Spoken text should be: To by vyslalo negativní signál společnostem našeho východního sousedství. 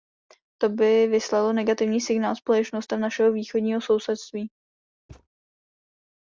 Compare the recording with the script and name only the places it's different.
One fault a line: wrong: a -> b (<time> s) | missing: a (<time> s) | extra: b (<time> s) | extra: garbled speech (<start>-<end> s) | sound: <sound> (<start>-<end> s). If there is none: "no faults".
sound: thud (5.1-5.3 s)